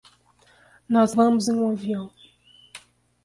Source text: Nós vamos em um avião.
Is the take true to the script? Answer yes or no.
yes